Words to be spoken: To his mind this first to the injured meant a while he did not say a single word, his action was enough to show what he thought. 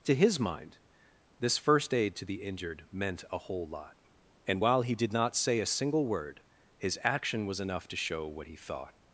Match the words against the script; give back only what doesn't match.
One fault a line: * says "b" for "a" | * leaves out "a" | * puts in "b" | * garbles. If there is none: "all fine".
* puts in "aid"
* puts in "whole lot and"